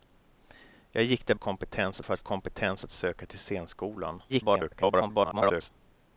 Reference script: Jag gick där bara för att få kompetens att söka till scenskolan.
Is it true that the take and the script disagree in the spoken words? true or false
true